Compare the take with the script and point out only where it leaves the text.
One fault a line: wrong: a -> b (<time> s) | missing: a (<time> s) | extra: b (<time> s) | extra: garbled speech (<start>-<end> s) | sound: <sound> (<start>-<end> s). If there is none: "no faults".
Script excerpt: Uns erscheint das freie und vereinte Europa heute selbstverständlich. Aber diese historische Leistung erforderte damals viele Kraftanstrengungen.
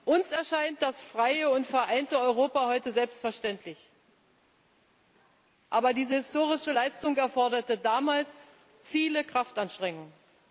no faults